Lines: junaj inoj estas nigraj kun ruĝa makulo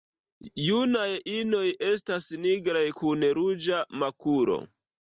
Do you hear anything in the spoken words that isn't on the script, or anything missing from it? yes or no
no